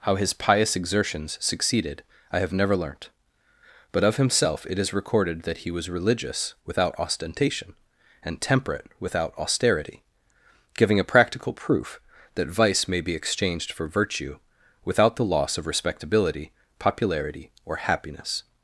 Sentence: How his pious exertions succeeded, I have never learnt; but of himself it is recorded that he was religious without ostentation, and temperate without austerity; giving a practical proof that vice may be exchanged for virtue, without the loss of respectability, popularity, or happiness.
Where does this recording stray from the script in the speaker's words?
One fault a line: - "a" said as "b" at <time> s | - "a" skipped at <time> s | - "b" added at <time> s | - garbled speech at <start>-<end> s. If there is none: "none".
none